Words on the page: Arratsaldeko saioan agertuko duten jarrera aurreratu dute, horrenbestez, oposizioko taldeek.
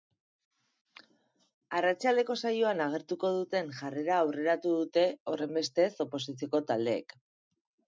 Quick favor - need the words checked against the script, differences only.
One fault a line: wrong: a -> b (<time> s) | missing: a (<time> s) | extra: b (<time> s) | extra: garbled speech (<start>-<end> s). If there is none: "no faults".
no faults